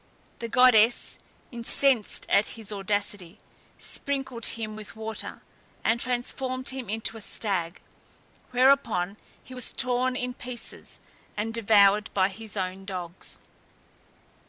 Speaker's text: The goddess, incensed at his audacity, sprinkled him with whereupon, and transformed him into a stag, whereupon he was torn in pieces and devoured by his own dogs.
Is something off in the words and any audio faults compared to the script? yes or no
yes